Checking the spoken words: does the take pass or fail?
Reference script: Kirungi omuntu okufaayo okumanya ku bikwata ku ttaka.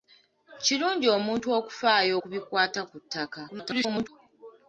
fail